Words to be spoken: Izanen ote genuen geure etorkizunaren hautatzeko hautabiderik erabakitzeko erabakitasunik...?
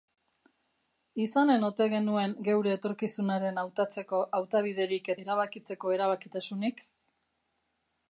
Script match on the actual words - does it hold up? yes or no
yes